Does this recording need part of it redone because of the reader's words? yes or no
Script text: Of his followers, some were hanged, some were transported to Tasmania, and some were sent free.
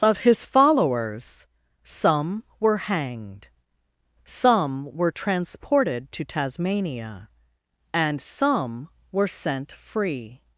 no